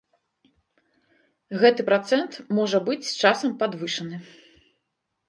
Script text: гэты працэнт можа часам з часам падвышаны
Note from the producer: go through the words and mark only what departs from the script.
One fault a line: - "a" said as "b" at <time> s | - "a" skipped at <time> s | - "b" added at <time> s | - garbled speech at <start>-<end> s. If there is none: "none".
- "часам" said as "быць" at 2.9 s